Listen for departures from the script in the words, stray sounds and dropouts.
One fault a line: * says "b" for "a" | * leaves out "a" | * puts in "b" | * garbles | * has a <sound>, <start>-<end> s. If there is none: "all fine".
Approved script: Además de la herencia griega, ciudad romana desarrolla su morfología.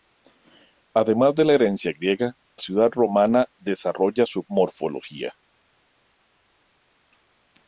all fine